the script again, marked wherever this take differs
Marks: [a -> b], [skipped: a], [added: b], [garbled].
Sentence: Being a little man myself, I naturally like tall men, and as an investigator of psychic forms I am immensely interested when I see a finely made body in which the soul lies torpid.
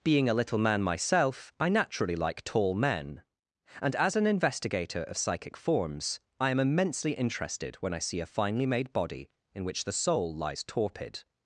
Being a little man myself, I naturally like tall men, and as an investigator of psychic forms I am immensely interested when I see a finely made body in which the soul lies torpid.